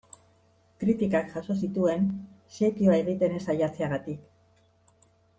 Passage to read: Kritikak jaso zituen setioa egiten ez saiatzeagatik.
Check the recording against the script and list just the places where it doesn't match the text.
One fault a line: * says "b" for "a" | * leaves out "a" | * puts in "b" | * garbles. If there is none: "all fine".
all fine